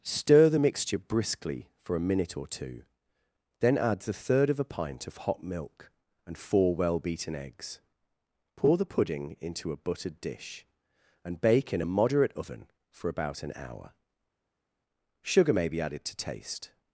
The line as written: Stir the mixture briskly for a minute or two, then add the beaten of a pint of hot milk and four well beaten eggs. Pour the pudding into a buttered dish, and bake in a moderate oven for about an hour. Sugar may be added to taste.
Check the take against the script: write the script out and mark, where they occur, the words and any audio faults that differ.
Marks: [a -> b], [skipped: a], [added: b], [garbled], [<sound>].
Stir the mixture briskly for a minute or two, then add the [beaten -> third] of a pint of hot milk and four well beaten eggs. Pour the pudding into a buttered dish, and bake in a moderate oven for about an hour. Sugar may be added to taste.